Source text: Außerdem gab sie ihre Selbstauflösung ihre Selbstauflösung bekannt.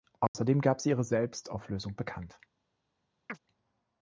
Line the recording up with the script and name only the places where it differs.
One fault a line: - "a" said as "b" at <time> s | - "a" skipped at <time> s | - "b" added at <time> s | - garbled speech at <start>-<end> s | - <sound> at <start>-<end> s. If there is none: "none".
- dropout at 0.3-0.3 s
- "ihre Selbstauflösung" skipped at 2.0 s
- chirp at 3.3-3.4 s